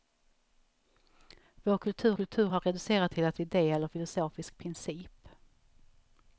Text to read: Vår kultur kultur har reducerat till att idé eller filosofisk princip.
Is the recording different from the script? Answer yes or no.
no